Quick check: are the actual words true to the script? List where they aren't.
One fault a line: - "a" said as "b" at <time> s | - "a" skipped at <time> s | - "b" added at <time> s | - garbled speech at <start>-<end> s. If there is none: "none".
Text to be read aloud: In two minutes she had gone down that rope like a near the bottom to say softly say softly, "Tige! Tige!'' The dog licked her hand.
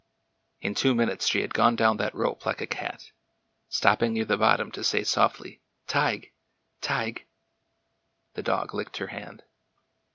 - "cat stopping" added at 2.6 s
- "say softly" skipped at 5.6 s